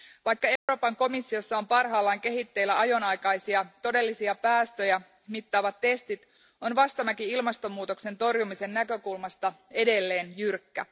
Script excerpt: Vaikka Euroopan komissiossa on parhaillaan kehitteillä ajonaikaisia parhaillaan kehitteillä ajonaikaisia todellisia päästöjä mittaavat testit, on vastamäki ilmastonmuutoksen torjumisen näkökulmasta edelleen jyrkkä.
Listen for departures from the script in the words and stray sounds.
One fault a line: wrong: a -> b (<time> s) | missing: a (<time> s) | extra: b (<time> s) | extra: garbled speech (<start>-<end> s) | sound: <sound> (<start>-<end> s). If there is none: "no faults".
sound: dropout (0.6-0.7 s)
missing: parhaillaan kehitteillä ajonaikaisia (3.6 s)